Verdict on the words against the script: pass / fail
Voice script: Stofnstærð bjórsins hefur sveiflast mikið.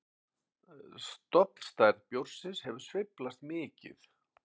pass